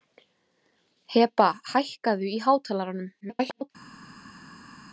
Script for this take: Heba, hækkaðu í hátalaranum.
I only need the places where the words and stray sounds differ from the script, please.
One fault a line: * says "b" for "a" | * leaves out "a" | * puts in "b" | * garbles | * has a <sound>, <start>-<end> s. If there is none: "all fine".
* garbles